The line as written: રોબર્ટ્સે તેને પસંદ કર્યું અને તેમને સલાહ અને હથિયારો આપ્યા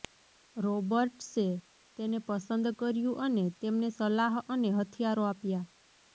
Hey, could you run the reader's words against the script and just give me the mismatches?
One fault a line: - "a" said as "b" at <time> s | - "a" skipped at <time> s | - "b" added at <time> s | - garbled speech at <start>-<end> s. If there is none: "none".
none